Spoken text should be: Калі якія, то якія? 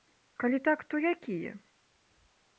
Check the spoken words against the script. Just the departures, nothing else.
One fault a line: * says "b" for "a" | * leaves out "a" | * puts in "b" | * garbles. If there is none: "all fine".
* says "так" for "якія"